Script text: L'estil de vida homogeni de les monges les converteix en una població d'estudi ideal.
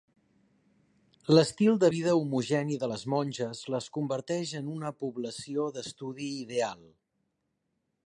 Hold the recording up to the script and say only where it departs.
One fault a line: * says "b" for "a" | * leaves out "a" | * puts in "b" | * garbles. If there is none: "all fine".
all fine